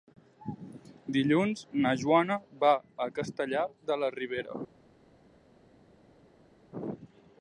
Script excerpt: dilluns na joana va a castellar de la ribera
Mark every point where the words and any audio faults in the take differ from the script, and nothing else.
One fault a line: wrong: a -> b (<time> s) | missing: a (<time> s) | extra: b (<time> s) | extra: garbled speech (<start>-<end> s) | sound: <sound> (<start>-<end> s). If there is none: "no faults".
no faults